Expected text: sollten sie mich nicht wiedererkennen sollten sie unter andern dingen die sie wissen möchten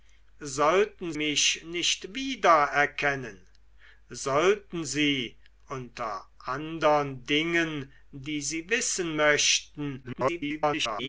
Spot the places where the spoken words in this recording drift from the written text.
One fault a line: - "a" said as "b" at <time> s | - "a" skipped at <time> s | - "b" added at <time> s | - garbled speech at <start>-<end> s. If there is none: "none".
- "sie" skipped at 1.1 s
- garbled speech at 10.0-11.1 s